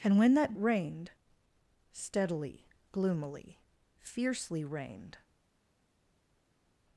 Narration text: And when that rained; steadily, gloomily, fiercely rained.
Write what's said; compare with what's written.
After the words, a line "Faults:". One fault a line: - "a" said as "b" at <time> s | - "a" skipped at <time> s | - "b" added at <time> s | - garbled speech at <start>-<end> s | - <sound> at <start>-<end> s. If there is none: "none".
And when that rained; steadily, gloomily, fiercely rained.
Faults:
none